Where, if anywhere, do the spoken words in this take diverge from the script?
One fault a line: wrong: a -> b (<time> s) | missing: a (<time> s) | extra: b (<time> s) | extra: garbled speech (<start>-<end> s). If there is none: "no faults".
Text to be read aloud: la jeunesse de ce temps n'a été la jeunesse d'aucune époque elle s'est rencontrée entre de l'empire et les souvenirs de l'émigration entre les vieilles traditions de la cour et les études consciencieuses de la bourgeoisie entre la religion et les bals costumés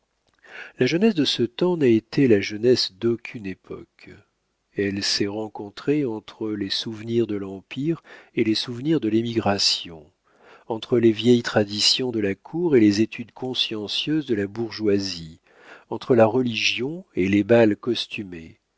extra: les souvenirs (6.5 s)